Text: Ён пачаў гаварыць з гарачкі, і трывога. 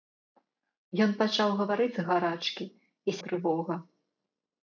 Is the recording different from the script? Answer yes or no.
no